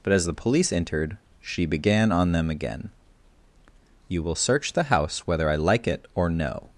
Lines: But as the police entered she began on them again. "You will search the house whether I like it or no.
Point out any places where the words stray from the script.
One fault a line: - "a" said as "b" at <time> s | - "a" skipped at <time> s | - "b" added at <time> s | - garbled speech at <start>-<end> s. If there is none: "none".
none